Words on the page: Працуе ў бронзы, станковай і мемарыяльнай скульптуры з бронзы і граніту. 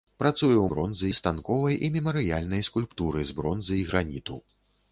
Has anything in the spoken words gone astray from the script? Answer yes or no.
no